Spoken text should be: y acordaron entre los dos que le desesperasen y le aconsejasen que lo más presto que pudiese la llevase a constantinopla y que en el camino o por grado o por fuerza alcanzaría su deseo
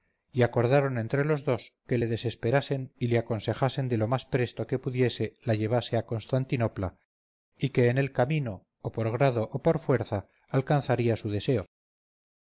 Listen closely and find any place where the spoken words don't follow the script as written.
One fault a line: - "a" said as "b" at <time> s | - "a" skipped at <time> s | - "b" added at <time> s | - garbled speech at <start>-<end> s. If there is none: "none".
none